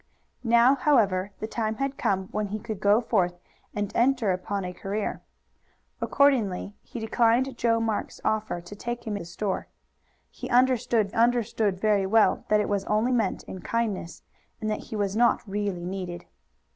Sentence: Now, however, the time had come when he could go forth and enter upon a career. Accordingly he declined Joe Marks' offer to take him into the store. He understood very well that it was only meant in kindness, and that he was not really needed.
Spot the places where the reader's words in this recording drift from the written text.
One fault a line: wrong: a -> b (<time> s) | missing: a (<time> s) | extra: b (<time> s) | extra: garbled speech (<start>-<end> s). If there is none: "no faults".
missing: into (9.2 s)
extra: understood (11.1 s)